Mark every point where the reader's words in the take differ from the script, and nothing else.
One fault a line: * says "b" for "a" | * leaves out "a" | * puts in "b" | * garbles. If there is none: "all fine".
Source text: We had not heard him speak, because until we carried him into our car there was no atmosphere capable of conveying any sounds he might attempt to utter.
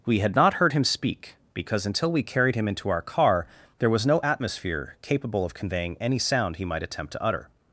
* says "sound" for "sounds"